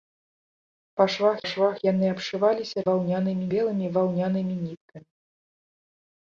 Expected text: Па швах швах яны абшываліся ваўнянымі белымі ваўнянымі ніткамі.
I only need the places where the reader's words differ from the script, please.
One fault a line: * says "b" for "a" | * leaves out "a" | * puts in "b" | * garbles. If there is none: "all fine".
all fine